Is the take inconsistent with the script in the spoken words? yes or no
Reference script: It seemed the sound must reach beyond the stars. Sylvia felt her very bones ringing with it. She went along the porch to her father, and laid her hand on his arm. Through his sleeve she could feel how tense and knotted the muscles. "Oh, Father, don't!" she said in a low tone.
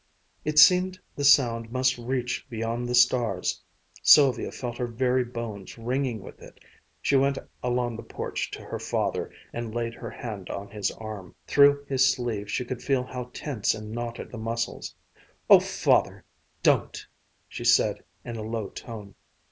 no